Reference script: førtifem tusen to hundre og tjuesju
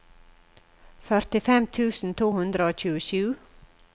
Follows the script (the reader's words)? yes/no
yes